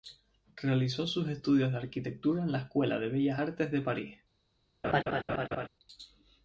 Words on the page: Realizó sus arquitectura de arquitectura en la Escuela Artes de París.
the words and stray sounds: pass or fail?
fail